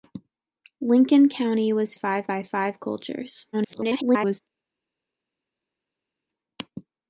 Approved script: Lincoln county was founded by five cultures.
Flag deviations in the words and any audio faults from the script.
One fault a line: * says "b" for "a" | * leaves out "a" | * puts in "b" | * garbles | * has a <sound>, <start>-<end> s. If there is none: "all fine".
* says "five" for "founded"
* garbles